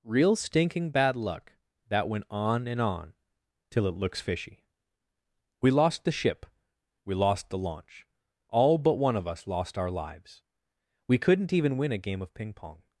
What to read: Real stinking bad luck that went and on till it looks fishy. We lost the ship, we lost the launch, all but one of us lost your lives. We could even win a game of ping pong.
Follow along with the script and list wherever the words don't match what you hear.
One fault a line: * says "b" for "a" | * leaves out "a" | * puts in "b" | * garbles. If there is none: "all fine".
* puts in "on"
* says "our" for "your"
* says "couldn't" for "could"